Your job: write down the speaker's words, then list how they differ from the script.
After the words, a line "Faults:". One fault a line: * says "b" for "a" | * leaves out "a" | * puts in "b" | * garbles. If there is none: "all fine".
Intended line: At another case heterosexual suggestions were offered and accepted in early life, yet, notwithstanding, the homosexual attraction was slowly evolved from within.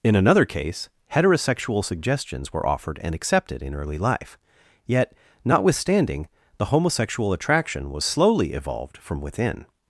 In another case heterosexual suggestions were offered and accepted in early life, yet, notwithstanding, the homosexual attraction was slowly evolved from within.
Faults:
* says "In" for "At"